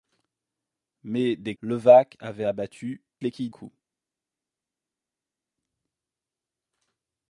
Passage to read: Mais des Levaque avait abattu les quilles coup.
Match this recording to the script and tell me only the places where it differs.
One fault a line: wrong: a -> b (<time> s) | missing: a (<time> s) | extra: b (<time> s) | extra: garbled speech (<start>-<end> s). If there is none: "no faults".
no faults